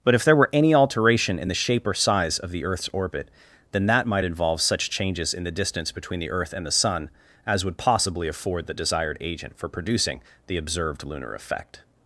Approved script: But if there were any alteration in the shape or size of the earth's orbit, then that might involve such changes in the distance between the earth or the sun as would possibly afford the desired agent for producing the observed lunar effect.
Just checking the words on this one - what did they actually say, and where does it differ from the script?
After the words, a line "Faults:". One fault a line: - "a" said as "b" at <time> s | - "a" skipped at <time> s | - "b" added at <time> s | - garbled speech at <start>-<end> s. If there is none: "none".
But if there were any alteration in the shape or size of the earth's orbit, then that might involve such changes in the distance between the earth and the sun as would possibly afford the desired agent for producing the observed lunar effect.
Faults:
- "or" said as "and" at 6.5 s